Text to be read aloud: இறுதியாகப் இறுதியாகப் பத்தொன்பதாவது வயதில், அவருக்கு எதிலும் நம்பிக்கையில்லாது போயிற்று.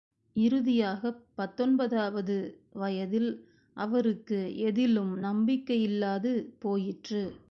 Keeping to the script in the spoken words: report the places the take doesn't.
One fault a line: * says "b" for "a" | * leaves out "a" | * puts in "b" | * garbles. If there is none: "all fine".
* leaves out "இறுதியாகப்"